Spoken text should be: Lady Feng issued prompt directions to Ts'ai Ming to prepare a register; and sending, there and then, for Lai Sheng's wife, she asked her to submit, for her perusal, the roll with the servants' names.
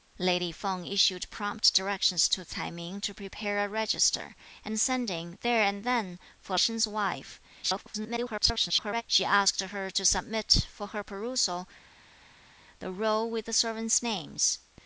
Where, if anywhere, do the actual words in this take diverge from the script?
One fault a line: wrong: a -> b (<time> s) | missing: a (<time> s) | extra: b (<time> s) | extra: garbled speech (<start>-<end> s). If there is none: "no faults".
missing: Lai (6.6 s)
extra: garbled speech (7.6-9.0 s)